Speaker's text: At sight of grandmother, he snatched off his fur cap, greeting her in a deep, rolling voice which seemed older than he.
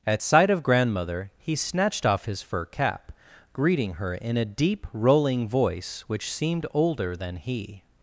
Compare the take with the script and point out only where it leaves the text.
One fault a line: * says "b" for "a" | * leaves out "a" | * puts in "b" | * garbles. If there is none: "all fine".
all fine